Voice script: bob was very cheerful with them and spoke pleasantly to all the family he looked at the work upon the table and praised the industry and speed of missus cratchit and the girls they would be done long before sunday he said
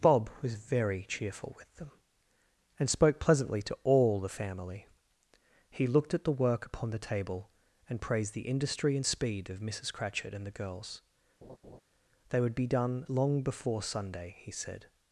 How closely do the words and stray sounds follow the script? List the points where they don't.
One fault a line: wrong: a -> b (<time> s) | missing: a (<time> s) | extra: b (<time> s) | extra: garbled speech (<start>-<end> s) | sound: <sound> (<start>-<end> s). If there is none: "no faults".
sound: laugh (11.4-11.8 s)